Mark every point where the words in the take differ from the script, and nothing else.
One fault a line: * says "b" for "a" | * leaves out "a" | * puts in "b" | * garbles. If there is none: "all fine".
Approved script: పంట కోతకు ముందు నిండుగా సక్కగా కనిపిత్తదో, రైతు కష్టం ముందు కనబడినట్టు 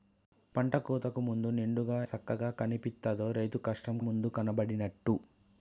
all fine